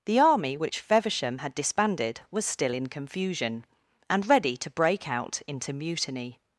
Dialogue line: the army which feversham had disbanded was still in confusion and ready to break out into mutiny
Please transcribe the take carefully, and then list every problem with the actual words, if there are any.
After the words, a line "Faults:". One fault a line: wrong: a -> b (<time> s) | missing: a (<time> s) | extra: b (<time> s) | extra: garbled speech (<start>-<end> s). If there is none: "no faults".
the army which feversham had disbanded was still in confusion and ready to break out into mutiny
Faults:
no faults